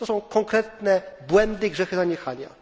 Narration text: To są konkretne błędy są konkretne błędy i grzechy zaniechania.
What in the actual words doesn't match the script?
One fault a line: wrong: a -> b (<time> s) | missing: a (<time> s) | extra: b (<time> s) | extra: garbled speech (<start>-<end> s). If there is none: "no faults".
missing: są konkretne błędy (1.7 s)